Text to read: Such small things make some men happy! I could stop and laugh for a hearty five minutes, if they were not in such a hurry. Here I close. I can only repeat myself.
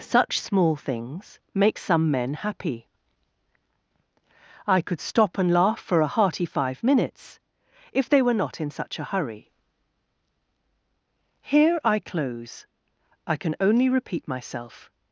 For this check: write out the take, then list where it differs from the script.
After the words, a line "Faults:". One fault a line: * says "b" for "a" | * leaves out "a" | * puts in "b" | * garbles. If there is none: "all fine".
Such small things make some men happy! I could stop and laugh for a hearty five minutes, if they were not in such a hurry. Here I close. I can only repeat myself.
Faults:
all fine